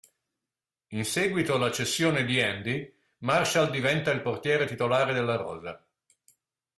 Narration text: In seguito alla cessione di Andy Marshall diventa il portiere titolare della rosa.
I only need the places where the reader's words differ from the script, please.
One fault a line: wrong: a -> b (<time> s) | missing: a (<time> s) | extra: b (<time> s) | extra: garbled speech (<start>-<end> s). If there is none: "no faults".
no faults